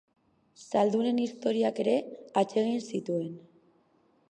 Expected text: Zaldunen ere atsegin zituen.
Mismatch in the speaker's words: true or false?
true